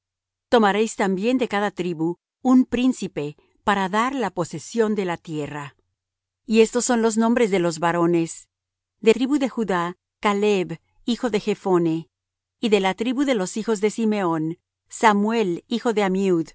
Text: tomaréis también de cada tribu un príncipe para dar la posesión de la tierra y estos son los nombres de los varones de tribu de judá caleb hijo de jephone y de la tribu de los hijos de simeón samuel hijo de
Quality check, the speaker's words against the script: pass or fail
pass